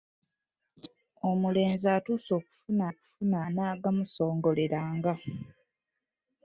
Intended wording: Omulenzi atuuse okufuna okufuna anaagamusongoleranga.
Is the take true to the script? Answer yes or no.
yes